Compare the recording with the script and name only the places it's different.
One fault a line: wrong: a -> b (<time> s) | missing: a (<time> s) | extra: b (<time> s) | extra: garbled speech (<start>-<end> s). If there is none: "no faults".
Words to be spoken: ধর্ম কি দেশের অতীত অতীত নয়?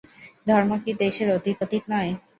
no faults